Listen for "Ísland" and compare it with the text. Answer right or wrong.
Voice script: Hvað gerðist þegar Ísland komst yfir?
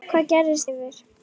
wrong